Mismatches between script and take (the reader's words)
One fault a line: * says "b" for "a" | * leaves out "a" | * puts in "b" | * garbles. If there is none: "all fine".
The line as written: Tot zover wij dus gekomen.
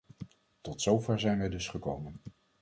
* puts in "zijn"